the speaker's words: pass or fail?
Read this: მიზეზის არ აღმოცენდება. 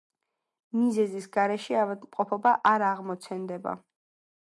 fail